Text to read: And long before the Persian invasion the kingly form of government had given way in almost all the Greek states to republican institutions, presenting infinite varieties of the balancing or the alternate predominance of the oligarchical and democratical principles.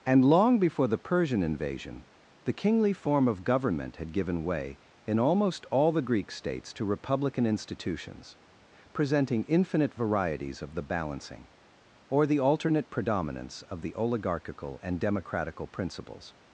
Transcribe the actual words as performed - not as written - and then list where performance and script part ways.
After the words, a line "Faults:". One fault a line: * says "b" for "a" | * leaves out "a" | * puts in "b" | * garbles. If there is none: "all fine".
And long before the Persian invasion the kingly form of government had given way in almost all the Greek states to republican institutions, presenting infinite varieties of the balancing or the alternate predominance of the oligarchical and democratical principles.
Faults:
all fine